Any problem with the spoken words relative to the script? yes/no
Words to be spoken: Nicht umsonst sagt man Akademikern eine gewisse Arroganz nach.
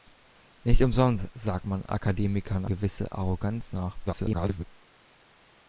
yes